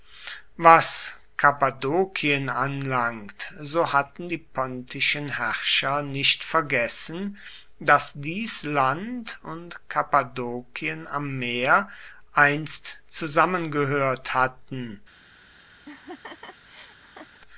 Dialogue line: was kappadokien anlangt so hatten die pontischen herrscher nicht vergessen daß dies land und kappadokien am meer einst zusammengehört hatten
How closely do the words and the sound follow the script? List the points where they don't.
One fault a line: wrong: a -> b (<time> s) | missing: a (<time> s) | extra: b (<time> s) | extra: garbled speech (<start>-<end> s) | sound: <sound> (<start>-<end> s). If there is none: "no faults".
sound: laugh (15.8-17.4 s)